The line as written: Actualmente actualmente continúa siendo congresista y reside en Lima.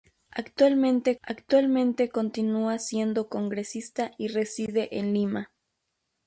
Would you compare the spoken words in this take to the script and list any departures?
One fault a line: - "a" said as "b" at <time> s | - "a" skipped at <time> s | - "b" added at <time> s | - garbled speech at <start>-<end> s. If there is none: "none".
none